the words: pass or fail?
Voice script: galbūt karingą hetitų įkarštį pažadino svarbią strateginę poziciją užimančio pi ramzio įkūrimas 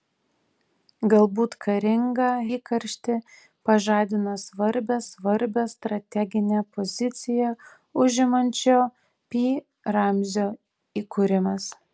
fail